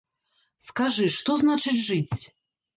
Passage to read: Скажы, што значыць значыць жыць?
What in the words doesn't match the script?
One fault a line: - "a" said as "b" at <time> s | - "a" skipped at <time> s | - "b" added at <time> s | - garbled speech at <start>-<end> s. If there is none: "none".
- "значыць" skipped at 1.8 s